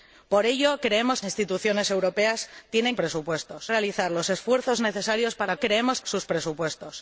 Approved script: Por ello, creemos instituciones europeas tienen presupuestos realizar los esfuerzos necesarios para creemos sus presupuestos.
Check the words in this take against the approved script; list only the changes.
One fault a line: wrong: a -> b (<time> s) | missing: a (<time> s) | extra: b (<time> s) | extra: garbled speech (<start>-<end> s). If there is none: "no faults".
no faults